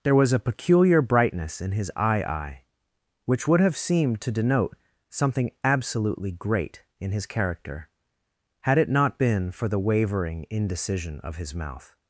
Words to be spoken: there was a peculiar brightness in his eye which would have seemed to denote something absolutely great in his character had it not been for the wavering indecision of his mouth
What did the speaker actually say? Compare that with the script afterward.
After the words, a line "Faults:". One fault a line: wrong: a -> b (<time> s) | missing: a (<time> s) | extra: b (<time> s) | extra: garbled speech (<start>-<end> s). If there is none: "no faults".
there was a peculiar brightness in his eye eye which would have seemed to denote something absolutely great in his character had it not been for the wavering indecision of his mouth
Faults:
extra: eye (2.2 s)